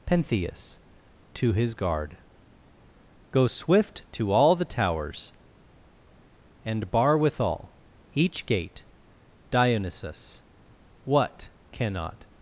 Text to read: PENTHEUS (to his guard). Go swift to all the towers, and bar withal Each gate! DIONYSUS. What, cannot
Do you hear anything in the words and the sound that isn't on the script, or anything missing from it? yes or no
no